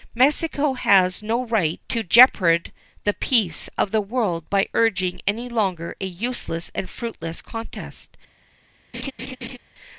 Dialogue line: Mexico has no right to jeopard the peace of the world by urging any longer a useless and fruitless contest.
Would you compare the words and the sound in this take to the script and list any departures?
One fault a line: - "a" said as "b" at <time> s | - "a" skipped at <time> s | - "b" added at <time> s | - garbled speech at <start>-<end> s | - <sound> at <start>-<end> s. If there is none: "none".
- laugh at 8.9-9.6 s